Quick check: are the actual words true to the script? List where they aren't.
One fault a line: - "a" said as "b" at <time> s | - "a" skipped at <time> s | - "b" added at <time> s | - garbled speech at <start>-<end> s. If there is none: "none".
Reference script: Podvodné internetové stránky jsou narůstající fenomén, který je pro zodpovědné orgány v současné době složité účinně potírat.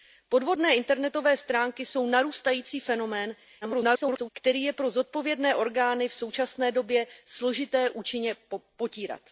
- garbled speech at 3.6-4.3 s